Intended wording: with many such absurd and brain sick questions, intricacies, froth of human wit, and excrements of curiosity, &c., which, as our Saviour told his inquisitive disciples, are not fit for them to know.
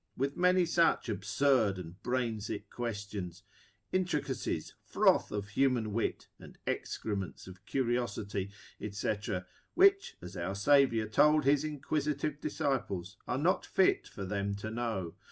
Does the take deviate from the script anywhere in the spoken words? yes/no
no